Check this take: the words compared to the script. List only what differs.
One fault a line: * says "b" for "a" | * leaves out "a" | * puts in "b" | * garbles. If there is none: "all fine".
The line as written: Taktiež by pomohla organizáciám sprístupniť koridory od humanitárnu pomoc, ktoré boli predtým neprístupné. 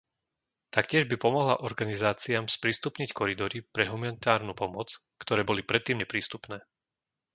* says "pre" for "od"